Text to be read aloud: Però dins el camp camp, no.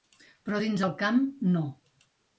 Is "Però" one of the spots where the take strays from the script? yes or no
no